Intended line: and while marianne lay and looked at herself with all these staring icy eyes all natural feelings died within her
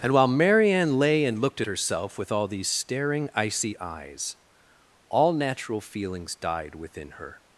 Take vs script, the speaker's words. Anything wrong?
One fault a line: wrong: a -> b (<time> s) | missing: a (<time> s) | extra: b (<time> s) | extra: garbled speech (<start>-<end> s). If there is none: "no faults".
no faults